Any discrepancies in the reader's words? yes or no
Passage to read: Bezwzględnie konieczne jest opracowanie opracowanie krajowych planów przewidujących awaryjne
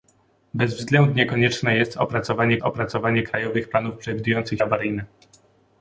no